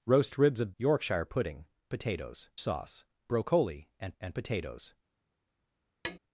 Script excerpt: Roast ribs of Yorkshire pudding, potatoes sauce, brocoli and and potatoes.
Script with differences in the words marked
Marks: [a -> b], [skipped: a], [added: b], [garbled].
Roast ribs of Yorkshire pudding, potatoes sauce, brocoli and and potatoes.